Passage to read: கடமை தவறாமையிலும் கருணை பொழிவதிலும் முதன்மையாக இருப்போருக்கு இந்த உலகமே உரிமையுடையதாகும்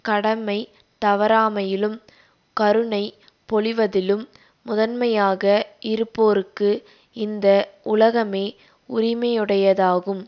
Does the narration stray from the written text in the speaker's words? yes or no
no